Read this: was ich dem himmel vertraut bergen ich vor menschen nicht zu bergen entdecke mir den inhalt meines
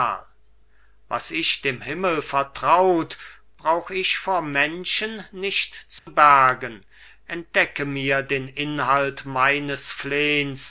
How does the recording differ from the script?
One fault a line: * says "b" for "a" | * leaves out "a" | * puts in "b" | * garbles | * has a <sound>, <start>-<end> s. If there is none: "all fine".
* says "brauch" for "bergen"
* has a dropout, 6.0-6.1 s